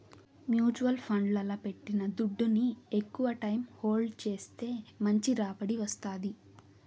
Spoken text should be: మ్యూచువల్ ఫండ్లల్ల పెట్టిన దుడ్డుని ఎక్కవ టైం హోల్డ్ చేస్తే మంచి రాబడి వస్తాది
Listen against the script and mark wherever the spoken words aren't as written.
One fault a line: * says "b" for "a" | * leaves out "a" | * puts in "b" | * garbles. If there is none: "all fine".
all fine